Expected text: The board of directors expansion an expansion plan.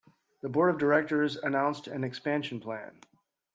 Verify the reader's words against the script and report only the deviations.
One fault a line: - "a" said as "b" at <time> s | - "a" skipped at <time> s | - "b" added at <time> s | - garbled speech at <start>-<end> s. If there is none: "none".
- "expansion" said as "announced" at 1.4 s